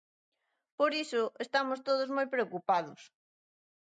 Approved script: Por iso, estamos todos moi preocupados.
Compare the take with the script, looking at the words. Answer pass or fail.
pass